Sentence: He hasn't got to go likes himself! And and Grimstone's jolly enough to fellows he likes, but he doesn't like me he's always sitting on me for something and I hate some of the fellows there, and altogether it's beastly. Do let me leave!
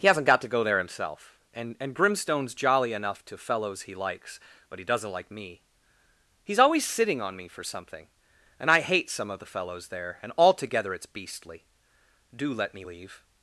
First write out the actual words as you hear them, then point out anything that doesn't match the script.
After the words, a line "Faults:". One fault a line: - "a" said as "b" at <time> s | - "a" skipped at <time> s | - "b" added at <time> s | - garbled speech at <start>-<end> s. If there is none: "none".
He hasn't got to go there himself! And and Grimstone's jolly enough to fellows he likes, but he doesn't like me he's always sitting on me for something and I hate some of the fellows there, and altogether it's beastly. Do let me leave!
Faults:
- "likes" said as "there" at 0.6 s